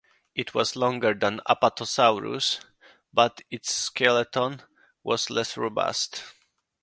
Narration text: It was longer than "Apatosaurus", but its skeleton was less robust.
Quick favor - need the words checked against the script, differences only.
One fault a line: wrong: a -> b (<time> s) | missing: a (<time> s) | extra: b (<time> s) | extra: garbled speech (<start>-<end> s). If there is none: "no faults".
no faults